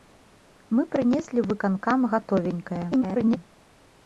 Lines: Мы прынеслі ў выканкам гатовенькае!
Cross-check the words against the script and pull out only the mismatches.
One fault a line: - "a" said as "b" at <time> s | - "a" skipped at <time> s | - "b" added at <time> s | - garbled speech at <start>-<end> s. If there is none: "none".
- garbled speech at 2.9-3.4 s